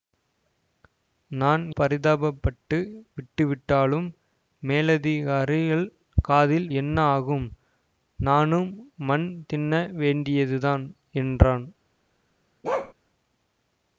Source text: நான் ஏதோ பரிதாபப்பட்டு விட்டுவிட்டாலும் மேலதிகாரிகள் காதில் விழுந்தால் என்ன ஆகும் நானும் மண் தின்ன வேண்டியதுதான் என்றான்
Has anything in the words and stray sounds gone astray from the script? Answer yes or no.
yes